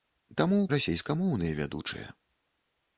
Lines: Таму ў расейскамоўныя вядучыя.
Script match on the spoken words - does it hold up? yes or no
yes